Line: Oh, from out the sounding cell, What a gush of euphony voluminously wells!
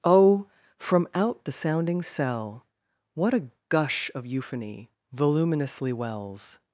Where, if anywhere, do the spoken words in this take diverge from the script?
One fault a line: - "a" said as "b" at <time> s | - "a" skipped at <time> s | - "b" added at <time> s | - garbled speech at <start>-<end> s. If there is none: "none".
none